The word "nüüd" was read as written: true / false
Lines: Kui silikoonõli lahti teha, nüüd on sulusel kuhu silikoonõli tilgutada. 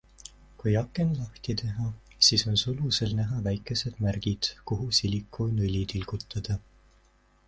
false